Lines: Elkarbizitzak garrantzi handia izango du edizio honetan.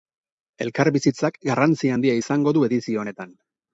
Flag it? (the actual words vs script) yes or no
no